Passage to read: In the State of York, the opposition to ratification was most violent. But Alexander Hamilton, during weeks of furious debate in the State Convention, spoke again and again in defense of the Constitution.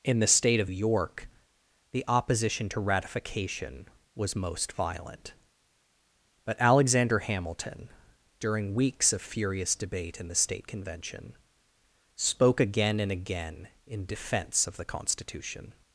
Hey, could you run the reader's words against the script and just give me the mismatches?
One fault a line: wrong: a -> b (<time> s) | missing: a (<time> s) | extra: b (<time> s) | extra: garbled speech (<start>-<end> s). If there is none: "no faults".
no faults